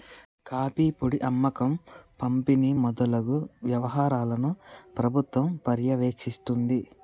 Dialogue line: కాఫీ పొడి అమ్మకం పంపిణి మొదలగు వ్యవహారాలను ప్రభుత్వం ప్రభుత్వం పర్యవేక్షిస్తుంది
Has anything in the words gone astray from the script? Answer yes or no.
yes